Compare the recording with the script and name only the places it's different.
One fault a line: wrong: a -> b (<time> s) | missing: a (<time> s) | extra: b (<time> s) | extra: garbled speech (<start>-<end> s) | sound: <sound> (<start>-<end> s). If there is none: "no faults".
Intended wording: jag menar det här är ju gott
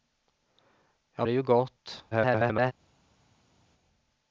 missing: menar det här (1.3 s)
extra: garbled speech (2.1-2.7 s)